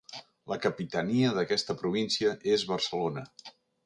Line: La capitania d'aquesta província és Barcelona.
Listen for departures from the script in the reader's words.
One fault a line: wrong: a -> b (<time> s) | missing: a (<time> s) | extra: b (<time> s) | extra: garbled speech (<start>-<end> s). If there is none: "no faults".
no faults